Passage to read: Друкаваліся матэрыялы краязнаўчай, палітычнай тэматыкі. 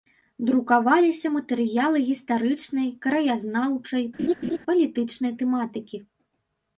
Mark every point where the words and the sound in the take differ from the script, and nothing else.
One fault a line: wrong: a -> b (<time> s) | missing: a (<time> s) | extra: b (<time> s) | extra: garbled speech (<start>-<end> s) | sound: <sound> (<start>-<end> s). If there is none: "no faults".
extra: гістарычнай (2.1 s)
sound: laugh (4.2-4.6 s)